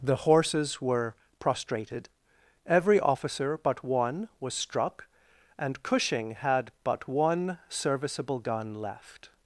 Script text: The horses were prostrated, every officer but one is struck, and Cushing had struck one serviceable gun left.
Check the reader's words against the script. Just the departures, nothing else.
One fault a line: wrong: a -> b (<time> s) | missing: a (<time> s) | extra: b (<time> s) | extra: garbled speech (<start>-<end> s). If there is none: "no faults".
wrong: is -> was (4.4 s)
wrong: struck -> but (6.8 s)